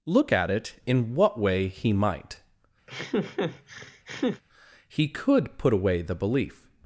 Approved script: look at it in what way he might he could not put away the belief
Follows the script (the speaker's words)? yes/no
no